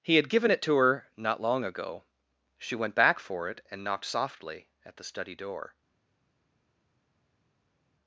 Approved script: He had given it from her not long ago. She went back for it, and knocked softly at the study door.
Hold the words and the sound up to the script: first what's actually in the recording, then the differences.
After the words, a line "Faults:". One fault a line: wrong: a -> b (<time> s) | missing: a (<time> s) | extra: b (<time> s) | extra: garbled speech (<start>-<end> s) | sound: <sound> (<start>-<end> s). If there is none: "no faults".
He had given it to her not long ago. She went back for it, and knocked softly at the study door.
Faults:
wrong: from -> to (0.6 s)